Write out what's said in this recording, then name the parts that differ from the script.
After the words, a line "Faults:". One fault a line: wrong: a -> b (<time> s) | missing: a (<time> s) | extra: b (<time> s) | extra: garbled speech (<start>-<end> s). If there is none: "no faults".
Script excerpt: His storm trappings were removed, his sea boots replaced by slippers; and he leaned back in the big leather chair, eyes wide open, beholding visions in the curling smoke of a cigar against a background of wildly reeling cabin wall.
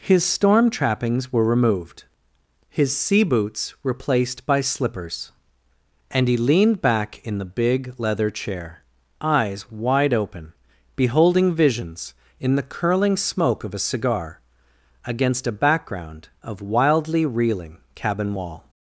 His storm trappings were removed, his sea boots replaced by slippers; and he leaned back in the big leather chair, eyes wide open, beholding visions in the curling smoke of a cigar against a background of wildly reeling cabin wall.
Faults:
no faults